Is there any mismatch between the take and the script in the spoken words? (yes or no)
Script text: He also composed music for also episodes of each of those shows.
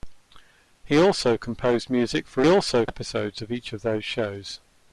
no